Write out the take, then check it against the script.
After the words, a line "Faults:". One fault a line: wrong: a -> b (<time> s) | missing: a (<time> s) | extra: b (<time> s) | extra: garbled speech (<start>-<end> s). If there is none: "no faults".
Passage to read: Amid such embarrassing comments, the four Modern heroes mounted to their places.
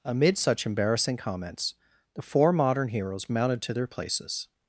Amid such embarrassing comments, the four Modern heroes mounted to their places.
Faults:
no faults